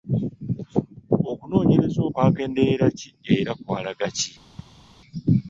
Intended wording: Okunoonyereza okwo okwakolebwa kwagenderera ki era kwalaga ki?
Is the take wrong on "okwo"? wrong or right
wrong